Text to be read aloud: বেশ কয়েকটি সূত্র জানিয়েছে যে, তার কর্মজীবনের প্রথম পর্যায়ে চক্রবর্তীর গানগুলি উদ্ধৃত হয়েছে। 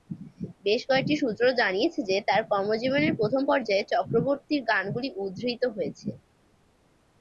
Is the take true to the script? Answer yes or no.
yes